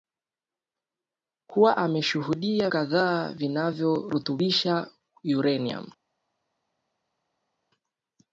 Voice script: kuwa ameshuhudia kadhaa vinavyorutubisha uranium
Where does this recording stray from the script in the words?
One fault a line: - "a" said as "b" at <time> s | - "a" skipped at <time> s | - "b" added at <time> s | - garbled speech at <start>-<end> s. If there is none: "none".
none